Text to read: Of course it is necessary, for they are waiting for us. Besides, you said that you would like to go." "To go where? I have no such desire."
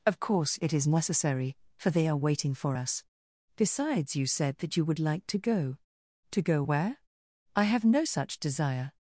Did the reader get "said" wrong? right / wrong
right